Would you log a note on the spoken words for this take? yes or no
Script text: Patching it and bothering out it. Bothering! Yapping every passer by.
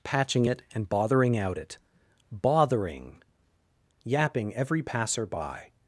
no